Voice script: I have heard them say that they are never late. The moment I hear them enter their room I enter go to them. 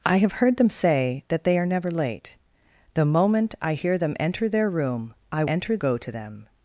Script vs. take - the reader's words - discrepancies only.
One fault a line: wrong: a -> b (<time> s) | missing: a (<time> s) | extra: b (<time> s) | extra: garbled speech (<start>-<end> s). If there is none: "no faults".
no faults